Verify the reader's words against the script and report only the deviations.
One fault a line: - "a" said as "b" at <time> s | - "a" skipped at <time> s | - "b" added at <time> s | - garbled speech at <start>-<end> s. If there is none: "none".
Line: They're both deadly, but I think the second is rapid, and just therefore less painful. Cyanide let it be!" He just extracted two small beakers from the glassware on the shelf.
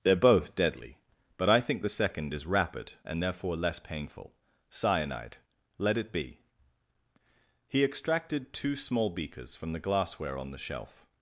- "just" skipped at 3.2 s
- "just" skipped at 7.8 s